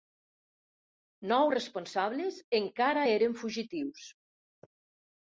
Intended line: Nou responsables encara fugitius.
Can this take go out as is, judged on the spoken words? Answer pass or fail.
fail